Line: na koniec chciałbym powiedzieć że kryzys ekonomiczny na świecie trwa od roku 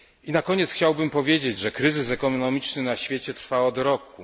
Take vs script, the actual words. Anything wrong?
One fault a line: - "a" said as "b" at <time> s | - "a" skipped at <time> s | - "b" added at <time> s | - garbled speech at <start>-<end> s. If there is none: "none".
none